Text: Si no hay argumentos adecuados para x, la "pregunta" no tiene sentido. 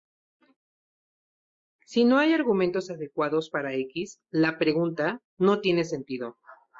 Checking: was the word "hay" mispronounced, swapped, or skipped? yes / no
no